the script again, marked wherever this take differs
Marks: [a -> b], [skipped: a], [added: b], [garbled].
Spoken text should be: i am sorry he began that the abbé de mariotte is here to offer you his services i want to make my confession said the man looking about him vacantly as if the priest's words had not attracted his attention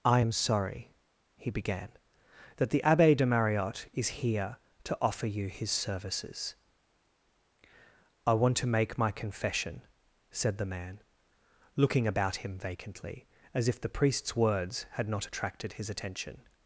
i am sorry he began that the abbé de mariotte is here to offer you his services i want to make my confession said the man looking about him vacantly as if the priest's words had not attracted his attention